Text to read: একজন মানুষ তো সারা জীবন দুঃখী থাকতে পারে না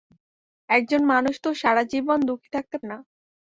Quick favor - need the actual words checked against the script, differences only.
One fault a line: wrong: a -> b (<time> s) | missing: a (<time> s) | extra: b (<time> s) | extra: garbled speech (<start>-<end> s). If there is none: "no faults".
missing: পারে (2.8 s)